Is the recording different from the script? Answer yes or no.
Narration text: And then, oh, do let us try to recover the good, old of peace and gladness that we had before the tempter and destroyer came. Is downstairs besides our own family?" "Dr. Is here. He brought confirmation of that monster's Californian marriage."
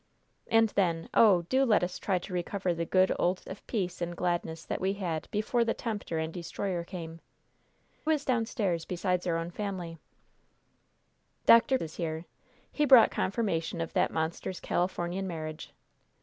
no